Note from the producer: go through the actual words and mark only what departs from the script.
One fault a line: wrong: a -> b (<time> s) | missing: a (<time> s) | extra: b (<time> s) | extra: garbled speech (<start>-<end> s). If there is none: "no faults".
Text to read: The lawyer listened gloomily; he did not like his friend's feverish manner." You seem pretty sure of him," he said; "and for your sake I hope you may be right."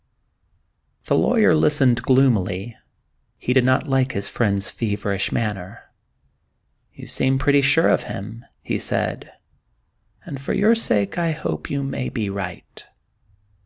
no faults